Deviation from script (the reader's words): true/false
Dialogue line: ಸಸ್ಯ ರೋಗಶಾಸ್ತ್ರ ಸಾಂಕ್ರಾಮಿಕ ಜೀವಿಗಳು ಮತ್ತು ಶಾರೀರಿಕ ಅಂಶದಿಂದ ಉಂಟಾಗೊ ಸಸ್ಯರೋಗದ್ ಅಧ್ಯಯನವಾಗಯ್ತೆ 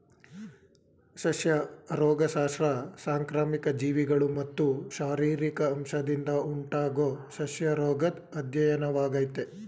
false